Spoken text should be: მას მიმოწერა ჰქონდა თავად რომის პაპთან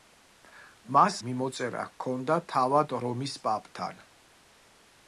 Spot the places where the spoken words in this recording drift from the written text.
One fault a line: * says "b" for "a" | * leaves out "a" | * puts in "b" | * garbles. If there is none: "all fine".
all fine